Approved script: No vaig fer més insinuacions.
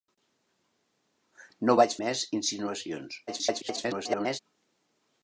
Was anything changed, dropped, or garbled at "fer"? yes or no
yes